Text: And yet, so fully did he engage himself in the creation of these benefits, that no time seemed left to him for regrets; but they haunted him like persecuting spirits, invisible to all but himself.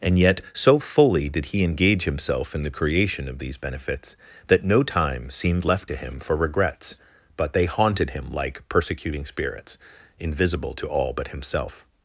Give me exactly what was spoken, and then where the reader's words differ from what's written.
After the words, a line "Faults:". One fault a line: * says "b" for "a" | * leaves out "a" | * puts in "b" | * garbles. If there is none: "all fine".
And yet, so fully did he engage himself in the creation of these benefits, that no time seemed left to him for regrets; but they haunted him like persecuting spirits, invisible to all but himself.
Faults:
all fine